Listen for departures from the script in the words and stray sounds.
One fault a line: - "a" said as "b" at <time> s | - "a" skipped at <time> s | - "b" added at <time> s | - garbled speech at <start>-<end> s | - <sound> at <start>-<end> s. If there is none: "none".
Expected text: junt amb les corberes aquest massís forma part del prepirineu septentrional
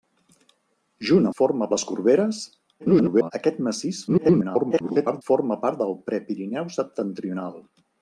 - "amb" said as "forma" at 1.4 s
- garbled speech at 2.8-3.3 s
- garbled speech at 4.1-5.2 s